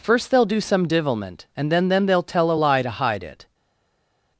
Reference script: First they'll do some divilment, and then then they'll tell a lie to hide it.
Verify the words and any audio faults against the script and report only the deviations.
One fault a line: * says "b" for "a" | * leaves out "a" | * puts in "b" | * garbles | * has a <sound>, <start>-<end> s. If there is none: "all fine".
all fine